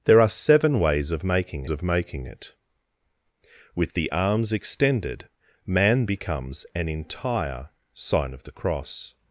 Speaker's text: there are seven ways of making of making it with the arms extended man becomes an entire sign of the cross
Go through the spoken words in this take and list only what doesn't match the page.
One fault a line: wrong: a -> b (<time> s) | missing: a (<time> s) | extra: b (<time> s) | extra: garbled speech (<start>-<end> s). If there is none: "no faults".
no faults